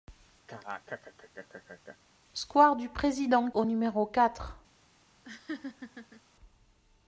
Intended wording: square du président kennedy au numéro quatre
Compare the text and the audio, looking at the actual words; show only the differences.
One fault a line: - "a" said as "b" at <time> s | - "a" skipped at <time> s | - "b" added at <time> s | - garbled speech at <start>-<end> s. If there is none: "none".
- "kennedy" skipped at 3.5 s